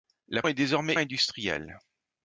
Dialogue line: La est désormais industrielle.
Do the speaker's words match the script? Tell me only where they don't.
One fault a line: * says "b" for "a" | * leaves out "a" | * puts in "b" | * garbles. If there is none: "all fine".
all fine